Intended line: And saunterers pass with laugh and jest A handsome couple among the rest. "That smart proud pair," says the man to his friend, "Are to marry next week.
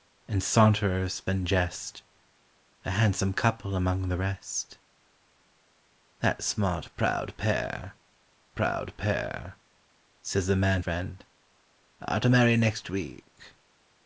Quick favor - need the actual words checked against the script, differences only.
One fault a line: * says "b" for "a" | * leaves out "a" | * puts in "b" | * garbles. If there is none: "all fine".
* leaves out "pass with laugh"
* puts in "proud pair"
* leaves out "to his"